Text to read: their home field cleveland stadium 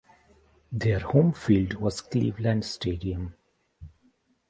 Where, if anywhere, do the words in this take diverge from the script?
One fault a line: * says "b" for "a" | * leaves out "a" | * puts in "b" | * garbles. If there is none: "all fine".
* puts in "was"